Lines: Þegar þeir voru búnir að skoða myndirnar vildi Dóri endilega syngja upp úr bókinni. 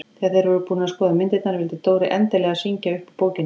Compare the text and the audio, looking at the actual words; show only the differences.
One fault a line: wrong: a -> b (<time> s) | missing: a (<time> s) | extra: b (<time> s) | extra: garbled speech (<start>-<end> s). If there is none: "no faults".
no faults